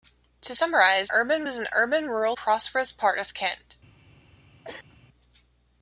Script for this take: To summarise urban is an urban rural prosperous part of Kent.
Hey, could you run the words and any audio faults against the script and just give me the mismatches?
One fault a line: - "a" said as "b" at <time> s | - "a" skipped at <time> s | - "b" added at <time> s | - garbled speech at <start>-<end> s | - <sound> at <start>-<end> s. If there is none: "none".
- cough at 4.6-5.0 s